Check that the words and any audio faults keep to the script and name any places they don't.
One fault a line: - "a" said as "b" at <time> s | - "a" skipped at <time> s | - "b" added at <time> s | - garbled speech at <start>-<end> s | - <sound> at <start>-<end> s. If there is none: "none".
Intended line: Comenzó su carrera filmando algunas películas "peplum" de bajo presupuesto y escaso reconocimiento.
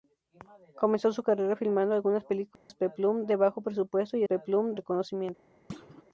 - dropout at 2.6-2.7 s
- "escaso" said as "peplum" at 4.2 s
- thud at 5.7-6.0 s